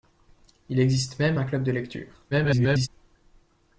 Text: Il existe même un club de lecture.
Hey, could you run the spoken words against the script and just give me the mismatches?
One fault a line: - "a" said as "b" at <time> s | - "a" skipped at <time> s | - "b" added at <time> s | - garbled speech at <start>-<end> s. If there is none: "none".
- garbled speech at 2.3-2.9 s